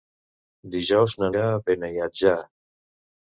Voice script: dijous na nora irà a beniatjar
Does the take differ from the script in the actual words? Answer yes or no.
yes